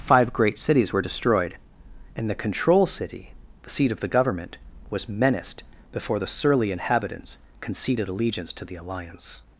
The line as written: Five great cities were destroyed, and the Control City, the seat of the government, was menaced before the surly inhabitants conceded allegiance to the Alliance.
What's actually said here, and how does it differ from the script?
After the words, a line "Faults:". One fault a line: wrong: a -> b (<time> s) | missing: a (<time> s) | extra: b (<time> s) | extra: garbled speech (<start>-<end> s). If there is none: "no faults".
Five great cities were destroyed, and the Control City, the seat of the government, was menaced before the surly inhabitants conceded allegiance to the Alliance.
Faults:
no faults